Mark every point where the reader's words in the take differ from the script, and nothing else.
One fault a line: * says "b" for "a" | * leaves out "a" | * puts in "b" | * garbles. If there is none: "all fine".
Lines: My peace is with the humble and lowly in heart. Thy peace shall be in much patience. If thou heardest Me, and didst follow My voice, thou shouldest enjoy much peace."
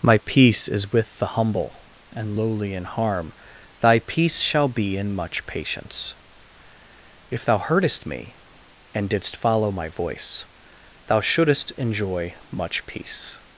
* says "harm" for "heart"